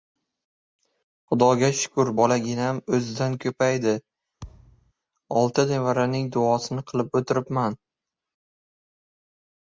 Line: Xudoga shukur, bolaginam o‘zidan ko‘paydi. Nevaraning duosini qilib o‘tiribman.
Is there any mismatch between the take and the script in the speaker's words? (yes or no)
yes